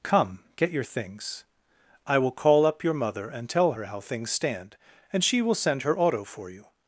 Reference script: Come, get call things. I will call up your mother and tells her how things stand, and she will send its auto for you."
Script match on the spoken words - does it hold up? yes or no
no